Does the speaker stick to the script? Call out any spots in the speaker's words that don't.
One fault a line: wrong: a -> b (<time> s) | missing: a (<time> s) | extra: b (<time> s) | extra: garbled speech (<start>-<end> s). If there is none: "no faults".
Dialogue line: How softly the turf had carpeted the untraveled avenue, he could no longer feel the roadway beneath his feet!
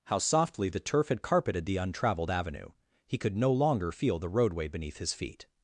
no faults